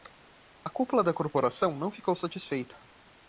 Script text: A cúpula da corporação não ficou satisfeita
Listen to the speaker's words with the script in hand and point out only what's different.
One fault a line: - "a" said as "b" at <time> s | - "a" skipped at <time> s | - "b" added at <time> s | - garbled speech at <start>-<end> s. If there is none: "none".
none